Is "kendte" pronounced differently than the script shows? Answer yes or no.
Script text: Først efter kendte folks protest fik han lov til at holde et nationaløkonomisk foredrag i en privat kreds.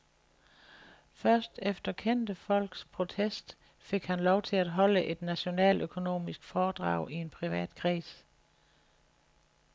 no